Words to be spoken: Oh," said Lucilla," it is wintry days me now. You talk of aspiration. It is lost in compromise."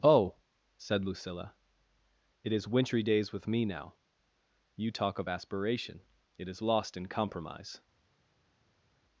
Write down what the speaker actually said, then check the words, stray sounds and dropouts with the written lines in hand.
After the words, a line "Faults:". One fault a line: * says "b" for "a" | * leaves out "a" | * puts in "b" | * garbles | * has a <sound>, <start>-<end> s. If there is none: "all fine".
Oh," said Lucilla," it is wintry days with me now. You talk of aspiration. It is lost in compromise."
Faults:
* puts in "with"